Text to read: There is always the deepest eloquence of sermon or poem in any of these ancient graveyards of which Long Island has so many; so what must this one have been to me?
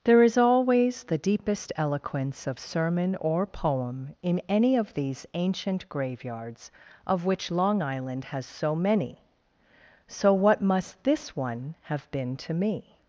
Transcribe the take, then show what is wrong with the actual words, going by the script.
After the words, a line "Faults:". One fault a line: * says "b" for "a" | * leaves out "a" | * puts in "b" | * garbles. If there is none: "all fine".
There is always the deepest eloquence of sermon or poem in any of these ancient graveyards of which Long Island has so many; so what must this one have been to me?
Faults:
all fine